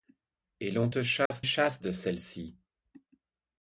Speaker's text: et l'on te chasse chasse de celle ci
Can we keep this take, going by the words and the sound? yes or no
no